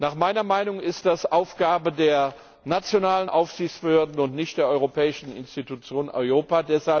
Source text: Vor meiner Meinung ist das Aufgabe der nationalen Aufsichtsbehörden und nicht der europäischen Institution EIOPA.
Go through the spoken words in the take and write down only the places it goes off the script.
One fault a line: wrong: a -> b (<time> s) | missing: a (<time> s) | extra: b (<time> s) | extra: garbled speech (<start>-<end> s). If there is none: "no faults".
wrong: Vor -> Nach (0.0 s)